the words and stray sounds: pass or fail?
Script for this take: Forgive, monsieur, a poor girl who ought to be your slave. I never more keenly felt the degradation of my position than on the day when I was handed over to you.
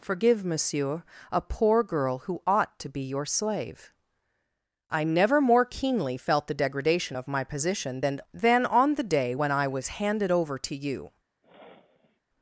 fail